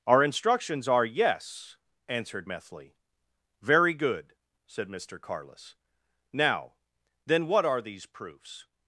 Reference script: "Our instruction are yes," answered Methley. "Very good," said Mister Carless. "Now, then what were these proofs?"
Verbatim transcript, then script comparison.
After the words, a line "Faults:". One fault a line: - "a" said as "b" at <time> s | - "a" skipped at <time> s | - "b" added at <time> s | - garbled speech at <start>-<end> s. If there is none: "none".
"Our instructions are yes," answered Methley. "Very good," said Mister Carless. "Now, then what are these proofs?"
Faults:
- "instruction" said as "instructions" at 0.2 s
- "were" said as "are" at 7.7 s